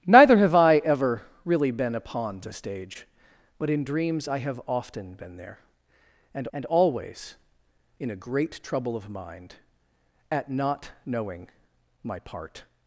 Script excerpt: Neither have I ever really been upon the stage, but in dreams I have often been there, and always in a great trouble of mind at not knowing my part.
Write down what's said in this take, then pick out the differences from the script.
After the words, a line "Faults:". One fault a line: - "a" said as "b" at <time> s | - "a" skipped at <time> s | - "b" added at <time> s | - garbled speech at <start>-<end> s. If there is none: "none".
Neither have I ever really been upon the stage, but in dreams I have often been there, and and always in a great trouble of mind at not knowing my part.
Faults:
- "and" added at 6.5 s